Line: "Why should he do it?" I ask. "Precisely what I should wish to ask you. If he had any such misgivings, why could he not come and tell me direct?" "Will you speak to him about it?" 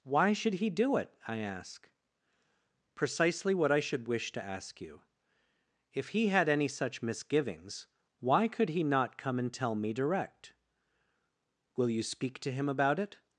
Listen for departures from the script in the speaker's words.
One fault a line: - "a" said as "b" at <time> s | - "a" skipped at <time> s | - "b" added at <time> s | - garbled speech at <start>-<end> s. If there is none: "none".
none